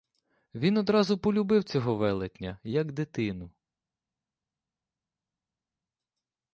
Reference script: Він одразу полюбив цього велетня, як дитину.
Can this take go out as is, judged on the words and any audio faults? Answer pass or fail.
pass